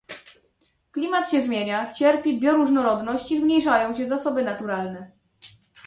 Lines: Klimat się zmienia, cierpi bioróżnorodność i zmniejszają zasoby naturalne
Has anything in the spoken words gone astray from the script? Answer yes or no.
yes